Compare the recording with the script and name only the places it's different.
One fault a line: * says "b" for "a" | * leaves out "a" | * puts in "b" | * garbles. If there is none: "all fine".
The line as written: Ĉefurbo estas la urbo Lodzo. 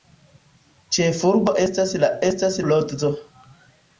* says "estas" for "urbo"